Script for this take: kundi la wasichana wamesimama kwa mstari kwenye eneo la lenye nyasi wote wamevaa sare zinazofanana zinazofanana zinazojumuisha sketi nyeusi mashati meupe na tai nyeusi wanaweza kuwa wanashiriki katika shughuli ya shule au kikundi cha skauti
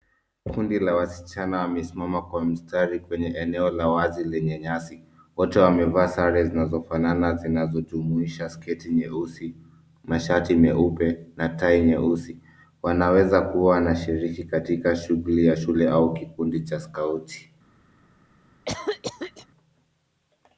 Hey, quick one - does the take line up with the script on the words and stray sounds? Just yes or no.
no